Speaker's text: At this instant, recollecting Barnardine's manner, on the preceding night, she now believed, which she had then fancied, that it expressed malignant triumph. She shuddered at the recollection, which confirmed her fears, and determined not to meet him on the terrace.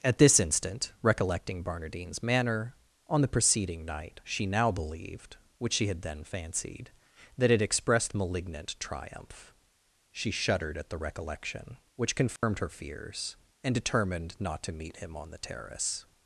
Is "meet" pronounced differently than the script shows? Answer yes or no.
no